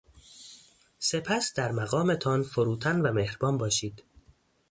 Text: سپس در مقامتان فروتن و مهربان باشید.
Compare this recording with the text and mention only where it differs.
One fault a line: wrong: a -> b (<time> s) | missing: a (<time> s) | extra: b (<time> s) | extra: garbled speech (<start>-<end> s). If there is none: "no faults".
no faults